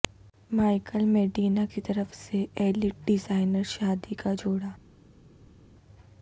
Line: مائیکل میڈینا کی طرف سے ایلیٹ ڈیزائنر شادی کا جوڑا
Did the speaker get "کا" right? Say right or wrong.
right